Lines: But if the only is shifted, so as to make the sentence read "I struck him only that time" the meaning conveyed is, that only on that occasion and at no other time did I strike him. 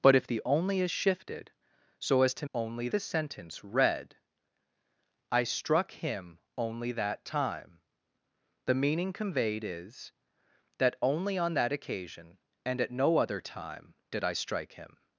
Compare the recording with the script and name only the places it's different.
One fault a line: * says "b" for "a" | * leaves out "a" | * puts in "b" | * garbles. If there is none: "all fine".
* says "only" for "make"